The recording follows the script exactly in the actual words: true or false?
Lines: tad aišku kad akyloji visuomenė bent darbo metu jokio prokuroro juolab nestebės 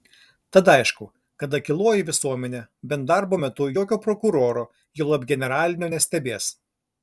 false